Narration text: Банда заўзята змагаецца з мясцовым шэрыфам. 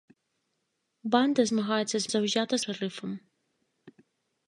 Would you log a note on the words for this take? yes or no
yes